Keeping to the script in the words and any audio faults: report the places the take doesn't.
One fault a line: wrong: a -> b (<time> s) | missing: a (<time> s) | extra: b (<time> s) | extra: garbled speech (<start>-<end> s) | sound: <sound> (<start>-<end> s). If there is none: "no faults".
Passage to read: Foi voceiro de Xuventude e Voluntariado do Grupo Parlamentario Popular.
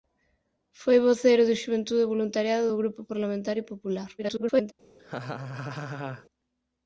extra: garbled speech (4.2-4.7 s)
sound: laugh (5.0-6.3 s)